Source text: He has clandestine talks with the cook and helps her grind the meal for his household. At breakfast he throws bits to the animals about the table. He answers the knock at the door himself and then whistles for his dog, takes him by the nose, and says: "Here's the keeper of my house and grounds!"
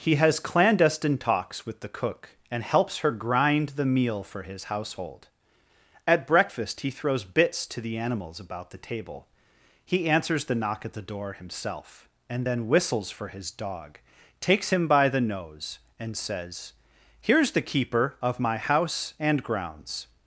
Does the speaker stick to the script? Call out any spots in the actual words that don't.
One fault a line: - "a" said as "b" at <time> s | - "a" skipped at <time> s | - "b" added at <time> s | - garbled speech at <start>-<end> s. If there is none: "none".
none